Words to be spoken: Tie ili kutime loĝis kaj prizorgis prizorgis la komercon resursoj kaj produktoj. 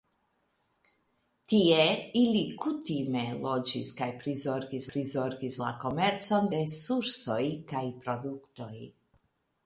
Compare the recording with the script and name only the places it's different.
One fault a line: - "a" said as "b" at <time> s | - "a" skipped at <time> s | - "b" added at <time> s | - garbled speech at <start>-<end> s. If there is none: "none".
none